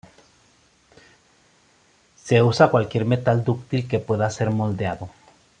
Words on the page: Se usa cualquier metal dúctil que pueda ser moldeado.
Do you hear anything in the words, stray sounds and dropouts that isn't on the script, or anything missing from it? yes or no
no